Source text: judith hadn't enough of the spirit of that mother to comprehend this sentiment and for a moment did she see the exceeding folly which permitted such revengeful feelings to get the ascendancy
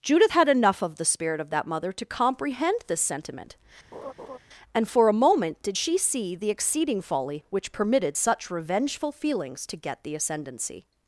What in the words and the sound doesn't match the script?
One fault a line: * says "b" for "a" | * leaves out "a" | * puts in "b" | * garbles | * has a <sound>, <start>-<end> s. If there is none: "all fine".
* says "had" for "hadn't"
* has a laugh, 3.9-4.4 s